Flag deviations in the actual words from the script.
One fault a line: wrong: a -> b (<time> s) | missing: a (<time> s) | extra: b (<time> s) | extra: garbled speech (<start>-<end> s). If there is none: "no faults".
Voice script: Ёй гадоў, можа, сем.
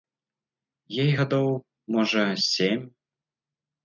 no faults